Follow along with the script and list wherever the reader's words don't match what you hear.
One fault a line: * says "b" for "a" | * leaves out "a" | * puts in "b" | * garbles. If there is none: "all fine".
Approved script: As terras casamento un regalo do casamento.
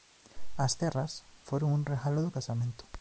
* says "foron" for "casamento"